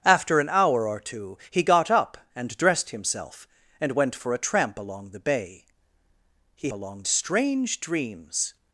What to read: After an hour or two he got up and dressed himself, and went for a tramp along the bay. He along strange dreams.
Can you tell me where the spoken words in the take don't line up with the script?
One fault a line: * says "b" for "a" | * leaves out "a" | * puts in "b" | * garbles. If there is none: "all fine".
all fine